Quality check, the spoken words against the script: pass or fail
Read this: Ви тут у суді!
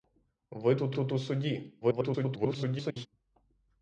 fail